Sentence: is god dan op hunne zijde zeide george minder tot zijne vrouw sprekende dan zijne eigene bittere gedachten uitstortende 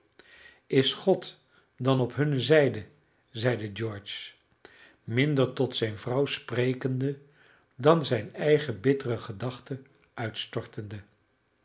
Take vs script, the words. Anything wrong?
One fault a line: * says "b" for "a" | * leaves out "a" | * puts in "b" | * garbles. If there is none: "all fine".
all fine